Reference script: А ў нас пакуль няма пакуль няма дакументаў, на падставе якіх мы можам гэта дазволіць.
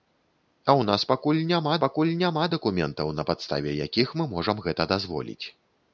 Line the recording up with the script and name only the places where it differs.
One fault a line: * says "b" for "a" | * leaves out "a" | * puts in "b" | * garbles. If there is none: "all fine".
all fine